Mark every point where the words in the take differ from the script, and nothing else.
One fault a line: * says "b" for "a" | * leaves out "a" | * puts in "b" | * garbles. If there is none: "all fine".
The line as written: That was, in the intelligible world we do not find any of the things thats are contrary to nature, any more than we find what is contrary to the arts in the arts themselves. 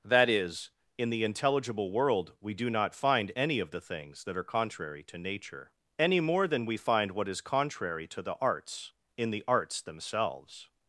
* says "is" for "was"
* says "that" for "thats"